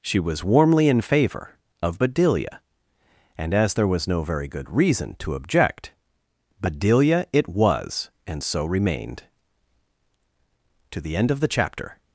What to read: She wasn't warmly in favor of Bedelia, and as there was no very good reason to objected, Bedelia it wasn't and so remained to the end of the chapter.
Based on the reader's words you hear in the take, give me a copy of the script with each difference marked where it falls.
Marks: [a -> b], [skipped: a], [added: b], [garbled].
She [wasn't -> was] warmly in favor of Bedelia, and as there was no very good reason to [objected, -> object] Bedelia it [wasn't -> was] and so remained to the end of the chapter.